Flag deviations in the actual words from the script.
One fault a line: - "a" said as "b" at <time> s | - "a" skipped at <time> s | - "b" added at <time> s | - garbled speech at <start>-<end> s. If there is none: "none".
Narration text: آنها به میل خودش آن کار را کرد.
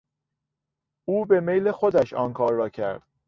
- "آنها" said as "او" at 1.1 s